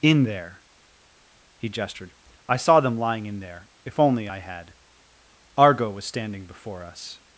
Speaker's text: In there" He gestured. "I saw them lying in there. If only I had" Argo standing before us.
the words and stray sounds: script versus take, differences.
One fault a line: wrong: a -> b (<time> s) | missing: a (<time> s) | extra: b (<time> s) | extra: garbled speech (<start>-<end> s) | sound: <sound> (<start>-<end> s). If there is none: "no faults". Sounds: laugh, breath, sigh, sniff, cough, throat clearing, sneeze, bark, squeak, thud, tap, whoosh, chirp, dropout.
extra: was (5.9 s)